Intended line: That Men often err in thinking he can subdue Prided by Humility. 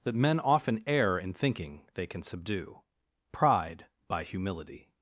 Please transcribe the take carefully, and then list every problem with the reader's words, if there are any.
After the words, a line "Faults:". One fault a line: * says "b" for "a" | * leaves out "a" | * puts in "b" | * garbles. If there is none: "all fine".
That Men often err in thinking they can subdue Pride by Humility.
Faults:
* says "they" for "he"
* says "Pride" for "Prided"